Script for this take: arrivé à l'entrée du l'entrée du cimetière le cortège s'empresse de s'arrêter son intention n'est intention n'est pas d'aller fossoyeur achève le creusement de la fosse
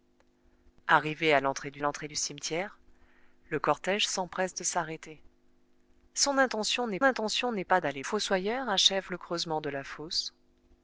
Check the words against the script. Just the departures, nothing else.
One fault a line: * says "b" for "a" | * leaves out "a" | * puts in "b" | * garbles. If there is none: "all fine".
all fine